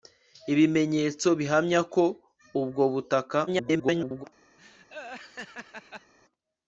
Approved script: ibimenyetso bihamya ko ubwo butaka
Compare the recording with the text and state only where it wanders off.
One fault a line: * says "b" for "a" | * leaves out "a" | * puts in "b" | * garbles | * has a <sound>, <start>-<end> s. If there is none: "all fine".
* garbles
* has a laugh, 4.6-6.1 s